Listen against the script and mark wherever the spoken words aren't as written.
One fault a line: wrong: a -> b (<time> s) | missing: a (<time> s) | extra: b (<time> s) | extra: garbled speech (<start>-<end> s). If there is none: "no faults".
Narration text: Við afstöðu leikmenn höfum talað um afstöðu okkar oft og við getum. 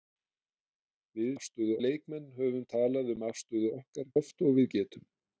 no faults